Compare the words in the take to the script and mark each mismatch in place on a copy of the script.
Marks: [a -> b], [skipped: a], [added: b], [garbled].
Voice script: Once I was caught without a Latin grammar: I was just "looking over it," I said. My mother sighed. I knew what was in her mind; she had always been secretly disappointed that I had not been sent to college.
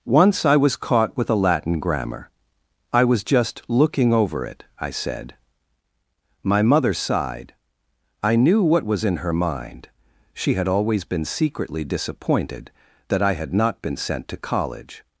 Once I was caught [without -> with] a Latin grammar: I was just "looking over it," I said. My mother sighed. I knew what was in her mind; she had always been secretly disappointed that I had not been sent to college.